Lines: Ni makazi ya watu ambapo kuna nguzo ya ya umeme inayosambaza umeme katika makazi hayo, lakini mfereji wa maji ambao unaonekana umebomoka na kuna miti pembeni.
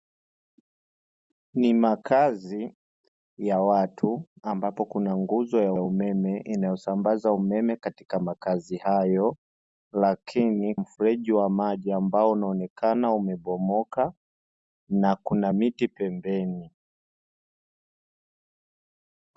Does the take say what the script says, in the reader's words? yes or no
yes